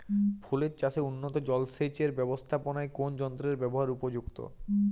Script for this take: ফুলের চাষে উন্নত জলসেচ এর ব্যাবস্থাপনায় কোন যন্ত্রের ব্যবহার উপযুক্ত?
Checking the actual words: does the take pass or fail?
pass